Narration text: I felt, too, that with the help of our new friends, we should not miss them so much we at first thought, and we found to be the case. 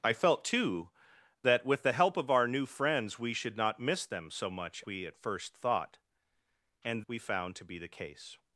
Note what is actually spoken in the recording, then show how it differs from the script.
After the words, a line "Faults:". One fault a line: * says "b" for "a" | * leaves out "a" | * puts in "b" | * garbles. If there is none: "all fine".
I felt, too, that with the help of our new friends, we should not miss them so much we at first thought, and we found to be the case.
Faults:
all fine